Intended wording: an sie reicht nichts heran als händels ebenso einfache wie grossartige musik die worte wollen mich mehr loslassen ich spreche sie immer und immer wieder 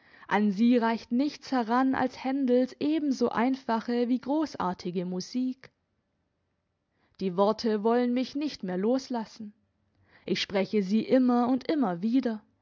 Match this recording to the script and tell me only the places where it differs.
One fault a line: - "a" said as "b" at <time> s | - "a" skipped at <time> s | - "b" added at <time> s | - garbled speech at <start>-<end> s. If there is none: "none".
- "nicht" added at 8.3 s